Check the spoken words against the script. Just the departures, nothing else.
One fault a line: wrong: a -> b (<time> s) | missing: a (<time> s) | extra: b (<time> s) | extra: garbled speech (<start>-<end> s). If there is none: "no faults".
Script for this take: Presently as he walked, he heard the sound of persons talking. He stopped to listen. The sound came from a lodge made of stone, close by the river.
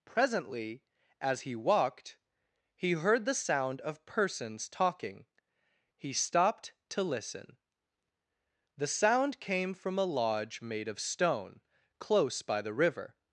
no faults